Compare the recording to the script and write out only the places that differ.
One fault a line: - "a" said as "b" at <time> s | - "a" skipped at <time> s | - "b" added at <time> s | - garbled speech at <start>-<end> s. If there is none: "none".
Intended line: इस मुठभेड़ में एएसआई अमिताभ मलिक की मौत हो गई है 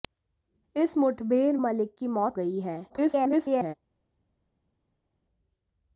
- "में एएसआई अमिताभ" skipped at 1.6 s
- "हो" skipped at 2.4 s
- garbled speech at 2.9-3.7 s